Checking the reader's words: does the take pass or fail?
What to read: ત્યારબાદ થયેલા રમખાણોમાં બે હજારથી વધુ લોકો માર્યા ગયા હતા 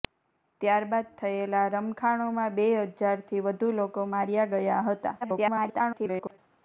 fail